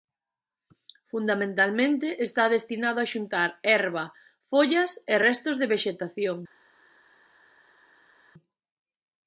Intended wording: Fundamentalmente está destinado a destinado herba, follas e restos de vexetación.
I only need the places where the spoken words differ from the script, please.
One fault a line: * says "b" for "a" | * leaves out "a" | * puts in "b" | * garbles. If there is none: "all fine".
* says "xuntar" for "destinado"